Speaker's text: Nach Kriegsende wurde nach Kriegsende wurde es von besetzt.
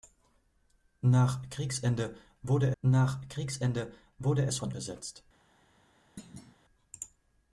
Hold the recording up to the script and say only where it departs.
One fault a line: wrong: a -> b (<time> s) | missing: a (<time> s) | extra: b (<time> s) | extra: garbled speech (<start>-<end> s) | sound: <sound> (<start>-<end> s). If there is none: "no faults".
sound: thud (6.2-6.6 s)